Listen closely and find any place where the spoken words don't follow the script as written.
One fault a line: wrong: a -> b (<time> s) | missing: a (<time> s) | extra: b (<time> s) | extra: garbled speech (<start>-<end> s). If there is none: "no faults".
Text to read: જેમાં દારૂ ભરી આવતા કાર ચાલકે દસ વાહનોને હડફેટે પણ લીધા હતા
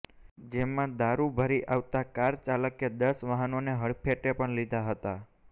no faults